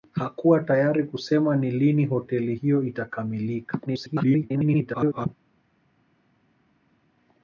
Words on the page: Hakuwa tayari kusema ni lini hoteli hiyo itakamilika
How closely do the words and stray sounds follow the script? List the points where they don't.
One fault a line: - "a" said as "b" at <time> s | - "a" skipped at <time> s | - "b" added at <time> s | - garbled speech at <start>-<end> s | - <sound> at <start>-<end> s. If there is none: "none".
- garbled speech at 3.9-5.3 s